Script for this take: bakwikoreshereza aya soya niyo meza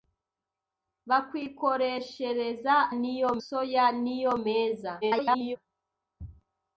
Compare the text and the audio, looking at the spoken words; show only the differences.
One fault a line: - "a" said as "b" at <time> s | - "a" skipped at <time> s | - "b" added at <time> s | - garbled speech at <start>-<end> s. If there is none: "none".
- "aya" said as "niyo" at 3.0 s
- garbled speech at 5.0-5.6 s